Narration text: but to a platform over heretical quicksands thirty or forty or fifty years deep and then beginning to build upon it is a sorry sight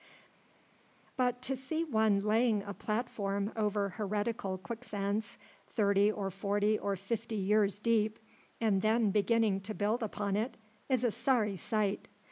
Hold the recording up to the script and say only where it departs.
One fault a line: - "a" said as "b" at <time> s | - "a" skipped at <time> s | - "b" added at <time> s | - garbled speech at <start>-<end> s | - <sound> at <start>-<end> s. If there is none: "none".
- "see one laying" added at 1.5 s